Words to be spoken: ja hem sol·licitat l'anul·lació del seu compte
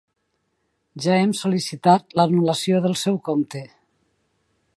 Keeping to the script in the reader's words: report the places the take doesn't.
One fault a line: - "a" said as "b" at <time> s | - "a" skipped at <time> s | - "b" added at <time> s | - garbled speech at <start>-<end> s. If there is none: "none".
none